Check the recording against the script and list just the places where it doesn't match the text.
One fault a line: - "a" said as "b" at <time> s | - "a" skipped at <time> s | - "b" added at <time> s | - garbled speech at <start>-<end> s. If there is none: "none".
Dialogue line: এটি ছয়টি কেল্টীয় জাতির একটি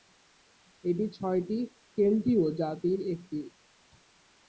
none